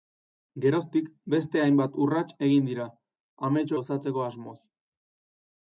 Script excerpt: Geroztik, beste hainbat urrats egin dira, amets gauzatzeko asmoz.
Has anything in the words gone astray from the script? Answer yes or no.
no